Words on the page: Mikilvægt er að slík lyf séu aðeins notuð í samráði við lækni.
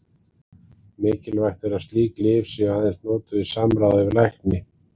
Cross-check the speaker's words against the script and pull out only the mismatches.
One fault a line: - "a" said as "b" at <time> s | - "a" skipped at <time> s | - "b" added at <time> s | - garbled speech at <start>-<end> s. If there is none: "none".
none